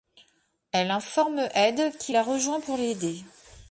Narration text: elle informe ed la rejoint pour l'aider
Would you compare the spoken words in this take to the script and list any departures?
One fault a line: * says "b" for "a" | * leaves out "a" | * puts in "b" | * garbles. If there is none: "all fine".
* puts in "qui"